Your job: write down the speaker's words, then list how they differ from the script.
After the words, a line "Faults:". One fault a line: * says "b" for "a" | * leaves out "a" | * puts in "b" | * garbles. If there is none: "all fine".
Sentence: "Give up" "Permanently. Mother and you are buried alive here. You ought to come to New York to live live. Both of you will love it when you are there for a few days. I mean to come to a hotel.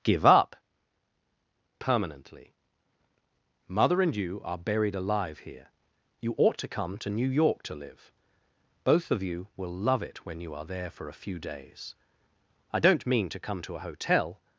"Give up" "Permanently. Mother and you are buried alive here. You ought to come to New York to live. Both of you will love it when you are there for a few days. I don't mean to come to a hotel.
Faults:
* leaves out "live"
* puts in "don't"